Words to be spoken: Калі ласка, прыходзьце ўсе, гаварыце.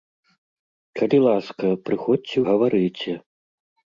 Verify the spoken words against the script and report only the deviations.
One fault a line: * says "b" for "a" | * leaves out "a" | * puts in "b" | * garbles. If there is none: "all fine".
* leaves out "ўсе"